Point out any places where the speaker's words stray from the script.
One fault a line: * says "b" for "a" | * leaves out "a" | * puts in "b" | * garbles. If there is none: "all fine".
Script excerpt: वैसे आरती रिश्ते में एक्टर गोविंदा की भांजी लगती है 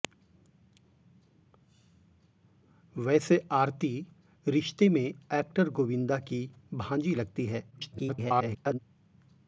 * garbles